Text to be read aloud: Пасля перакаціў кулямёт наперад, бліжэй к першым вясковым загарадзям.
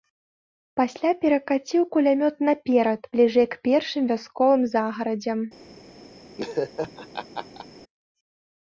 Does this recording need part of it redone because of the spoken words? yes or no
no